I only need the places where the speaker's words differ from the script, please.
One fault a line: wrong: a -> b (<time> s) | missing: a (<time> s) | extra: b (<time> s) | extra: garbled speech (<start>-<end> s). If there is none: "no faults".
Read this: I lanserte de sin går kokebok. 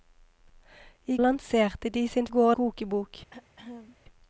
no faults